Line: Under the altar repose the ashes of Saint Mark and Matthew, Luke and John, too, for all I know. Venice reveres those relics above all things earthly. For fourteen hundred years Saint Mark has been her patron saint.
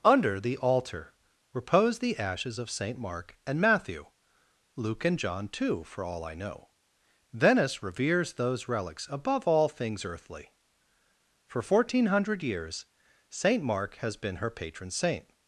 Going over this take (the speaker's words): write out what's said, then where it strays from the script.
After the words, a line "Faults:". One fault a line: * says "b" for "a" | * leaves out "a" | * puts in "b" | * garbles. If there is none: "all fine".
Under the altar repose the ashes of Saint Mark and Matthew, Luke and John, too, for all I know. Venice reveres those relics above all things earthly. For fourteen hundred years Saint Mark has been her patron saint.
Faults:
all fine